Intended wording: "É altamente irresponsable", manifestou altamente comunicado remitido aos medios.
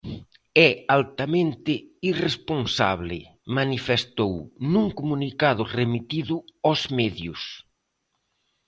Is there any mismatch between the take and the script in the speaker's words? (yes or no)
yes